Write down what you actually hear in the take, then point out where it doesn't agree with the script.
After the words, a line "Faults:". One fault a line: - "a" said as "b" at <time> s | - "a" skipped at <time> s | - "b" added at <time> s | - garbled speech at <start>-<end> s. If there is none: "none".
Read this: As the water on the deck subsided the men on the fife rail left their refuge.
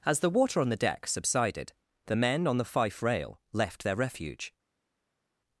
As the water on the deck subsided the men on the fife rail left their refuge.
Faults:
none